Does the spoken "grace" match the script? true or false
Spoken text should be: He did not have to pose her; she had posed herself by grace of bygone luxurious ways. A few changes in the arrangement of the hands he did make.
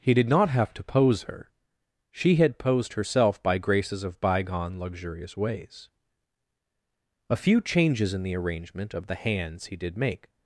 false